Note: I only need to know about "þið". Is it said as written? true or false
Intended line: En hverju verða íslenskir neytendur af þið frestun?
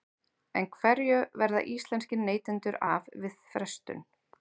false